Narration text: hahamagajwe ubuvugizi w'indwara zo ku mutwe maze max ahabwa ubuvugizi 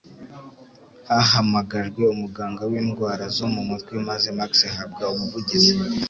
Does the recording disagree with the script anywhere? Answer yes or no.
yes